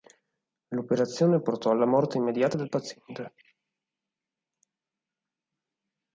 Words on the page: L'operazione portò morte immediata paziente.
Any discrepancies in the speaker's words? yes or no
yes